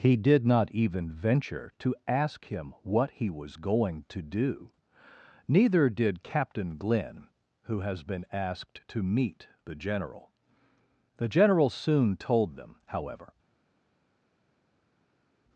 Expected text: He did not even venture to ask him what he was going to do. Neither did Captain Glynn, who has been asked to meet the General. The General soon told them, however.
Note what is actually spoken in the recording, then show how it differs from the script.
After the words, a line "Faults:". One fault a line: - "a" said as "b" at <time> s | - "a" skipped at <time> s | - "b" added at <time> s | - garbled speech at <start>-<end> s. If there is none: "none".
He did not even venture to ask him what he was going to do. Neither did Captain Glynn, who has been asked to meet the General. The General soon told them, however.
Faults:
none